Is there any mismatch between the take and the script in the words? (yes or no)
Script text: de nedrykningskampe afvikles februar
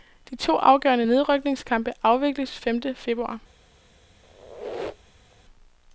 yes